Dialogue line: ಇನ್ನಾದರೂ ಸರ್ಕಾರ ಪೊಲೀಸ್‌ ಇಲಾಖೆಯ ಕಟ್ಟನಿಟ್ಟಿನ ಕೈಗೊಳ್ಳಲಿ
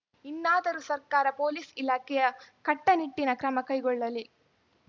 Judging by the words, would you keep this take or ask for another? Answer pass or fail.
fail